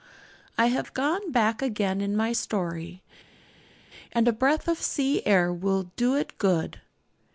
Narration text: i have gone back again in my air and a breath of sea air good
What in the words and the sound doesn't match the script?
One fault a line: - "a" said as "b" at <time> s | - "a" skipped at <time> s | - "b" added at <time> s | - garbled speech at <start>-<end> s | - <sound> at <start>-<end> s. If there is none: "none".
- "air" said as "story" at 2.3 s
- "will do it" added at 5.5 s